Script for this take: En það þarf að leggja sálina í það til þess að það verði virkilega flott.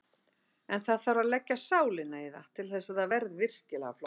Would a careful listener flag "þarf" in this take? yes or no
no